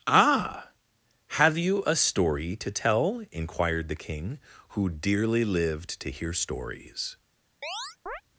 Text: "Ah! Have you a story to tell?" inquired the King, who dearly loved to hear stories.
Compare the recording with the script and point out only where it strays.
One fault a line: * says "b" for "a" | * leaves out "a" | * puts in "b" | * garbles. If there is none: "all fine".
* says "lived" for "loved"